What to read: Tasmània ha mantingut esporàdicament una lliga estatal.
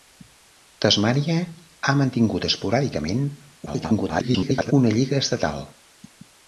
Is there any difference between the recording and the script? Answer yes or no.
yes